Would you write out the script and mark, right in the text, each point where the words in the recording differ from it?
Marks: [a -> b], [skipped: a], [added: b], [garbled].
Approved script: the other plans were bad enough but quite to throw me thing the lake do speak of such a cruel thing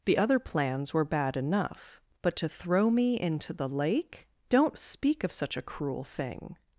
the other plans were bad enough but [skipped: quite] to throw me [thing -> into] the lake [do -> don't] speak of such a cruel thing